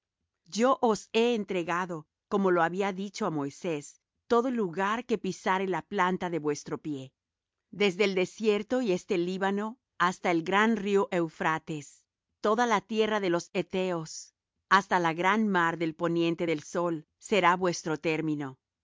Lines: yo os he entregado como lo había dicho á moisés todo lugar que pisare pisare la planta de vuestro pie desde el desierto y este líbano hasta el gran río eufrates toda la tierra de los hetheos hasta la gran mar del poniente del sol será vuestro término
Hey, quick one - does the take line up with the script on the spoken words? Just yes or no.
no